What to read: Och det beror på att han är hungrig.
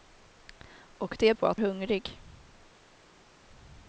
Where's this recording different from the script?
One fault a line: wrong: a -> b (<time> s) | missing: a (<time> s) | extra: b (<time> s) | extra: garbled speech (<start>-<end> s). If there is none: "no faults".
missing: beror (1.3 s)
missing: han är (1.6 s)